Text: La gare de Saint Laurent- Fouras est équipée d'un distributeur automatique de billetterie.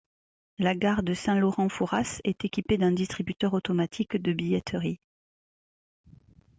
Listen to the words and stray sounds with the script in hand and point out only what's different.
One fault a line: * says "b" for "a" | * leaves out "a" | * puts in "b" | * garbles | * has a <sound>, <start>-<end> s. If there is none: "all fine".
all fine